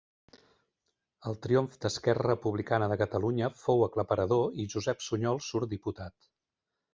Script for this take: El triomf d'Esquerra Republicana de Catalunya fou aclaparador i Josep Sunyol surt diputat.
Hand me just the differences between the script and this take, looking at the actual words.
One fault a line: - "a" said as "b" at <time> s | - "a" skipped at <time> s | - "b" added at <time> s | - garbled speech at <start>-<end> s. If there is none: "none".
none